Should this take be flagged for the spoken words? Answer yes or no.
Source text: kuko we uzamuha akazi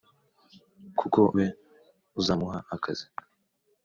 no